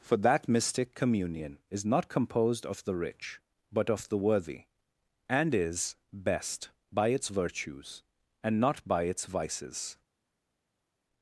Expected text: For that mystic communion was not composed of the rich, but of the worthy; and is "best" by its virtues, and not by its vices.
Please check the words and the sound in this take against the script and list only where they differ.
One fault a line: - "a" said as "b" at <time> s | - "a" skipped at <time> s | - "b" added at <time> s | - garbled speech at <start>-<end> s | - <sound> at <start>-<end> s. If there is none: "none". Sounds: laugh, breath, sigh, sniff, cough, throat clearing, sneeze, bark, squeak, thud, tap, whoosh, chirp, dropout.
- "was" said as "is" at 1.7 s